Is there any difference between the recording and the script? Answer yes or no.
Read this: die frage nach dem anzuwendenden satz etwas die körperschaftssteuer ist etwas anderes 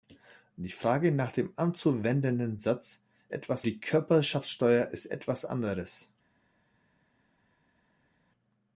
no